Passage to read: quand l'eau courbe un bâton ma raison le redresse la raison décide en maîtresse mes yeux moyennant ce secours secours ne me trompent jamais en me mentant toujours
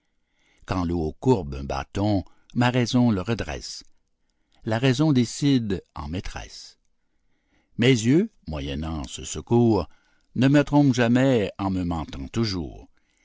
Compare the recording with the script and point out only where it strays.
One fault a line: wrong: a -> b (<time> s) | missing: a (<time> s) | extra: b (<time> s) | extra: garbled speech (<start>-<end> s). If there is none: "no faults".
missing: secours (9.9 s)